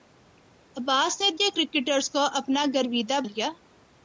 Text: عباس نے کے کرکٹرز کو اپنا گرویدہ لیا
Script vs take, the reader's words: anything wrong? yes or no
no